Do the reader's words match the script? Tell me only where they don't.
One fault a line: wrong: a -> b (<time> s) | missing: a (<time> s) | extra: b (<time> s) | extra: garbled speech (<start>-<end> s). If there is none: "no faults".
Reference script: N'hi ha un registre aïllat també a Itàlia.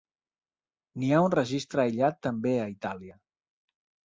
no faults